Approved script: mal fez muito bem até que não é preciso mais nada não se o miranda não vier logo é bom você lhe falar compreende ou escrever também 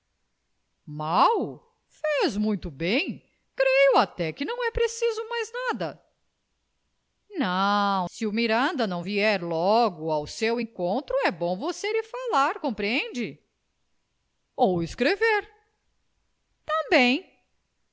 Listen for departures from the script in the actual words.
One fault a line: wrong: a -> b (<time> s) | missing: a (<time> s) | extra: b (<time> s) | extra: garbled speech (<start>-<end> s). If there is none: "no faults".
extra: creio (3.5 s)
extra: ao seu encontro (10.1 s)